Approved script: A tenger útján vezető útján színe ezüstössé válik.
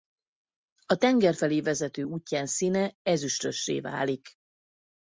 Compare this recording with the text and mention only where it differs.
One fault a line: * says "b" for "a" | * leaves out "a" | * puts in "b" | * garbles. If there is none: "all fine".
* says "felé" for "útján"